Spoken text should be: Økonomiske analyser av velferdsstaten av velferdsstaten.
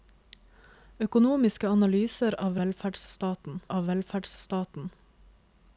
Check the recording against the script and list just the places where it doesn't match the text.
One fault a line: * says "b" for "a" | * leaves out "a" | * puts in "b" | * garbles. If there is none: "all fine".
all fine